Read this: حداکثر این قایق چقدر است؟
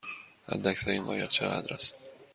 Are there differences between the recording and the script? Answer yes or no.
no